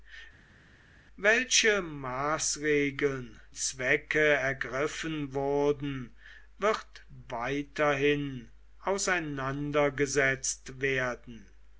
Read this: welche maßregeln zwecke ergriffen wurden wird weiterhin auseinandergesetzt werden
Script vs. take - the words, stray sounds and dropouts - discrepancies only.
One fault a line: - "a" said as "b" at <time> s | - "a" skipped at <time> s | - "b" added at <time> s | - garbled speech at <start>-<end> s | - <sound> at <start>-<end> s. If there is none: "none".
none